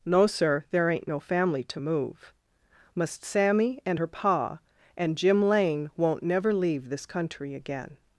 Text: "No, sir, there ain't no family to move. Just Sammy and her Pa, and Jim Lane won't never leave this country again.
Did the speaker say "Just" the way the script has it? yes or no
no